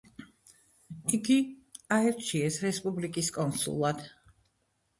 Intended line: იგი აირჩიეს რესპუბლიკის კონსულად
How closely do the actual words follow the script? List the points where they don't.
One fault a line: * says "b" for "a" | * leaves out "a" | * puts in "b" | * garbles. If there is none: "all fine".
all fine